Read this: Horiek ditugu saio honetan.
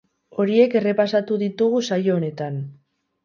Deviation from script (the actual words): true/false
true